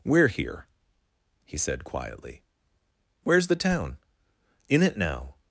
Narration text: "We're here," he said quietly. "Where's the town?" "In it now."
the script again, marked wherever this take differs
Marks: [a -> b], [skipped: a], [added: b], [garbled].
"We're here," he said quietly. "Where's the town?" "In it now."